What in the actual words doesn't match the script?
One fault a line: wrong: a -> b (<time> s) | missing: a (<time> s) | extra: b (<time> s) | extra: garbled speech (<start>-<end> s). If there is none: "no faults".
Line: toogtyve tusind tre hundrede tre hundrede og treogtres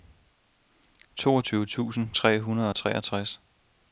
missing: tre hundrede (2.7 s)